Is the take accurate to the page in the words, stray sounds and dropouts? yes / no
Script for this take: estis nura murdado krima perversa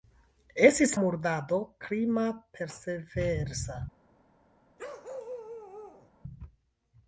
no